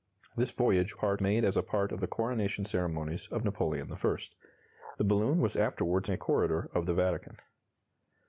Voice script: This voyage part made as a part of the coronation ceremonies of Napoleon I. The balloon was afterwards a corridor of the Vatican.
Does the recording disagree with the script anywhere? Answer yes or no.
no